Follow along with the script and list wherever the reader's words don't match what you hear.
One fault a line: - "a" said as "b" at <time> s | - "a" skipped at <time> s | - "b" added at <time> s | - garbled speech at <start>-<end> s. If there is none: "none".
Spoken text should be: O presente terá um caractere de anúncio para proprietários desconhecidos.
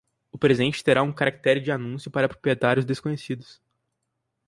none